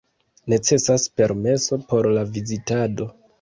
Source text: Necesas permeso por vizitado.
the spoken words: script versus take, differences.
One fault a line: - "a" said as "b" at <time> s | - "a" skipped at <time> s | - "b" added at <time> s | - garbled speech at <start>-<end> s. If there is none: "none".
- "la" added at 2.1 s